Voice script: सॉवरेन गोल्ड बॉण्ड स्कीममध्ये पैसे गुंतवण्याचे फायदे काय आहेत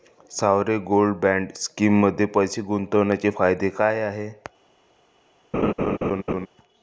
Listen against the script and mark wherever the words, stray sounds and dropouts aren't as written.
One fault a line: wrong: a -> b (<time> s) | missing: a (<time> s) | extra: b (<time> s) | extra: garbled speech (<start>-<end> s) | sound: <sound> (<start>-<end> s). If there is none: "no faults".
sound: laugh (5.5-6.5 s)